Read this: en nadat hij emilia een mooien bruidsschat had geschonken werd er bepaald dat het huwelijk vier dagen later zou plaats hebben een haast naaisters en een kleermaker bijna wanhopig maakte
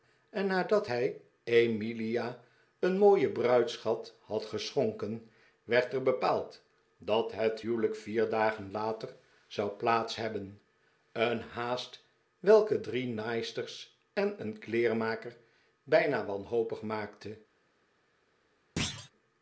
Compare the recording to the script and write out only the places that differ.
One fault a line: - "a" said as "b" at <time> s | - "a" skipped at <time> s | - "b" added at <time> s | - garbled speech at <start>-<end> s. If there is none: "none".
- "welke drie" added at 12.4 s